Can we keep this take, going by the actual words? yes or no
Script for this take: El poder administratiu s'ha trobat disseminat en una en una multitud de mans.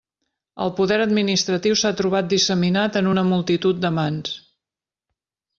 no